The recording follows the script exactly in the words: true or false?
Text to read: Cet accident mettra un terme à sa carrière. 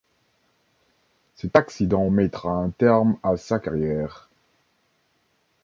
true